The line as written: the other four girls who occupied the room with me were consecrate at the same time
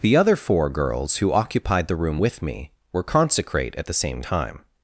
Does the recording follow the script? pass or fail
pass